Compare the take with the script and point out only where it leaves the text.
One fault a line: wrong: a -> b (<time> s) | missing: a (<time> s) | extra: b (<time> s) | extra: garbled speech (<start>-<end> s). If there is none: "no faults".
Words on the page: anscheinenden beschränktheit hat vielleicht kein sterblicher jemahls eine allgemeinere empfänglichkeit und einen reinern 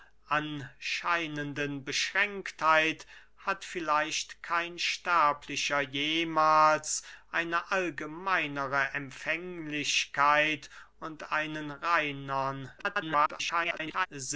extra: garbled speech (12.8-14.1 s)